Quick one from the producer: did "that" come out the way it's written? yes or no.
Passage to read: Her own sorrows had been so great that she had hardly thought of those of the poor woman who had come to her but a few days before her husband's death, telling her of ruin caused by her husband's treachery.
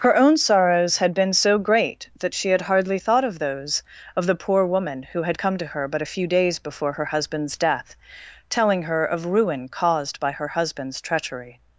yes